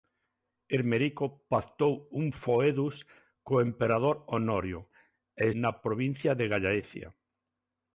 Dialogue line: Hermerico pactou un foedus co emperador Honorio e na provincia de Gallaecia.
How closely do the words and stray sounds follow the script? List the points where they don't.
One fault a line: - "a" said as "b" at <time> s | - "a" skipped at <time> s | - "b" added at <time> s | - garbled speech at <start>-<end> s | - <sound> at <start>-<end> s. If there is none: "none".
none